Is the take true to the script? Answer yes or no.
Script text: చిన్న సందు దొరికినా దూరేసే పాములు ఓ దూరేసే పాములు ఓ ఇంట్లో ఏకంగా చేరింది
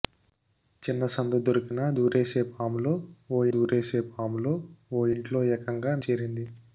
yes